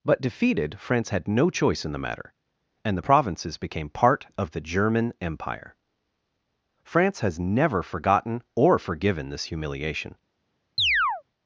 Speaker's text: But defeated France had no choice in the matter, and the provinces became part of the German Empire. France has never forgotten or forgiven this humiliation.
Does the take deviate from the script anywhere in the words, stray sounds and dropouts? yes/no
yes